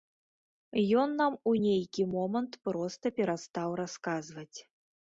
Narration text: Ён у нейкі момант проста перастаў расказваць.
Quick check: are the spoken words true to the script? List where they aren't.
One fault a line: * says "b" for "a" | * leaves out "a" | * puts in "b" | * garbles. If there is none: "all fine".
* puts in "нам"